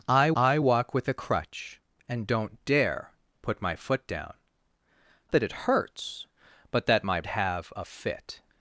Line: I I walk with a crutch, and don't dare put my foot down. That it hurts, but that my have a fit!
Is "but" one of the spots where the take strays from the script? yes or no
no